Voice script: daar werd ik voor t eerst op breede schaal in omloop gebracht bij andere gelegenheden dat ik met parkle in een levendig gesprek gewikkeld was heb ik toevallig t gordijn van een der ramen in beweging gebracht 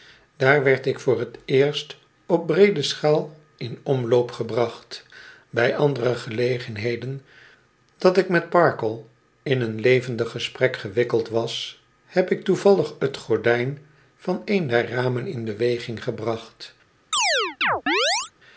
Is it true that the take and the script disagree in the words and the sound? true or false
true